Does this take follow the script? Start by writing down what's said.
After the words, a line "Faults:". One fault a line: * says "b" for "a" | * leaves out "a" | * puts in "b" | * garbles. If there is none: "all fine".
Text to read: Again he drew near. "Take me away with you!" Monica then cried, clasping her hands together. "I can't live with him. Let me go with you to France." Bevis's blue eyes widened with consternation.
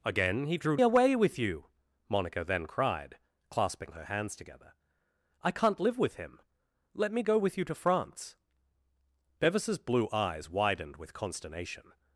Again he drew away with you!" Monica then cried, clasping her hands together. "I can't live with him. Let me go with you to France." Bevis's blue eyes widened with consternation.
Faults:
* leaves out "near Take me"